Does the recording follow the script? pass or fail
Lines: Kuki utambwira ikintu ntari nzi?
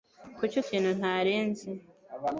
fail